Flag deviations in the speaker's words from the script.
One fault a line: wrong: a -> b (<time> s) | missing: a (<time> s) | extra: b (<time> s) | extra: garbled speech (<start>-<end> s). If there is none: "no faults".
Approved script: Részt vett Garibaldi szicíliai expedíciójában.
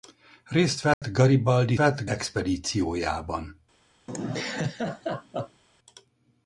wrong: szicíliai -> vett (1.7 s)